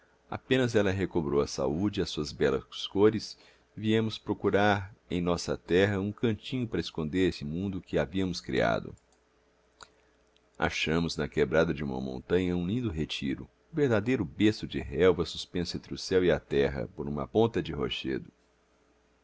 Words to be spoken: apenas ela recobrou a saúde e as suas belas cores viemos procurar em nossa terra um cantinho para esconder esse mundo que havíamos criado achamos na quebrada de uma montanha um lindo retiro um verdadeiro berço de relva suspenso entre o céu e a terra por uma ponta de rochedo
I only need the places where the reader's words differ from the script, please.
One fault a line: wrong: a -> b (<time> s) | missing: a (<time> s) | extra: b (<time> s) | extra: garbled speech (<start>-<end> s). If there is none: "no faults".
no faults